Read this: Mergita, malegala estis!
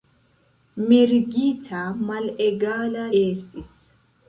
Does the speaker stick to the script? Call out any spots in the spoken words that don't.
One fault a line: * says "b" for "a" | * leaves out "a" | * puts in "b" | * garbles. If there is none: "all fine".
all fine